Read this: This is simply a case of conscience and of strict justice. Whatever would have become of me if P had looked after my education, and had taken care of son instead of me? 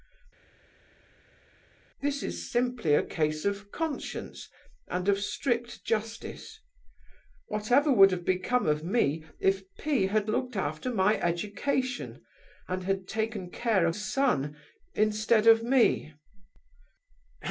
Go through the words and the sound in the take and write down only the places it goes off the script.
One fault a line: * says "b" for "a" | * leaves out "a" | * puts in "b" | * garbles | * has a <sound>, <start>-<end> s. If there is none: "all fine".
all fine